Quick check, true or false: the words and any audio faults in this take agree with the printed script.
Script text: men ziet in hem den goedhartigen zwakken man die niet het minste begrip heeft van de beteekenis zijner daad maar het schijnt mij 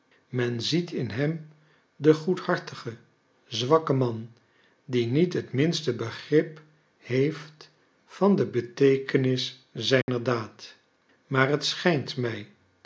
false